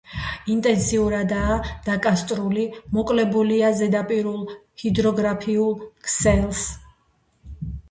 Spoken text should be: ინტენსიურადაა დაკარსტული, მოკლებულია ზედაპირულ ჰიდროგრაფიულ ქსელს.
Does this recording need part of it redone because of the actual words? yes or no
no